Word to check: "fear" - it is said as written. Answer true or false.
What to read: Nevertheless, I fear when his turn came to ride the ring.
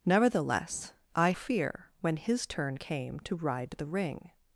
true